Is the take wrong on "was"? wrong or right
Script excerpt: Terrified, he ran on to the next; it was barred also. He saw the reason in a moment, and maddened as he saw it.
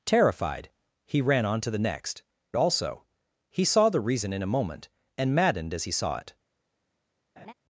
wrong